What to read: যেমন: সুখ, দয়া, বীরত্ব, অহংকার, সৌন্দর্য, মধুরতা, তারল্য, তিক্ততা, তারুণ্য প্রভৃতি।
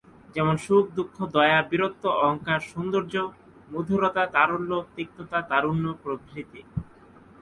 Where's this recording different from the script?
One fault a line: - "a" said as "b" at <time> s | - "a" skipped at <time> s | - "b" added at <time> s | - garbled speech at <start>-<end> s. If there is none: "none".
- "দুঃখ" added at 1.0 s